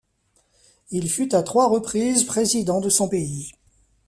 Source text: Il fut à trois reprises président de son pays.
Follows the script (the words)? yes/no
yes